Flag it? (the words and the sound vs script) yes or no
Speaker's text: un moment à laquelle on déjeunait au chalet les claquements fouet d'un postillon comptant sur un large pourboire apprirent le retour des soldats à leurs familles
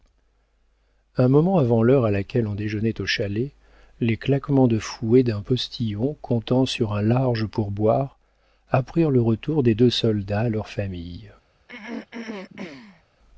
yes